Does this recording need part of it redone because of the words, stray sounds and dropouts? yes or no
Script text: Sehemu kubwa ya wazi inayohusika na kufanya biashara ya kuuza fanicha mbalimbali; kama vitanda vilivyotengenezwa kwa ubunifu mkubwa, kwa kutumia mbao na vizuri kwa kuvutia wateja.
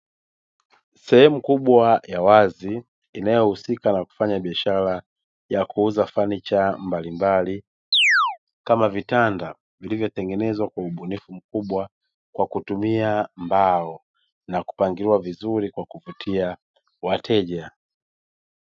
yes